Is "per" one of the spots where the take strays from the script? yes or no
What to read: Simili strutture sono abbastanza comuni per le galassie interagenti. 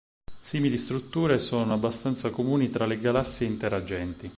yes